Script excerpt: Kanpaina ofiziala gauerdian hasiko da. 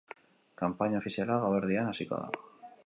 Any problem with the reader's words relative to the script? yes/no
no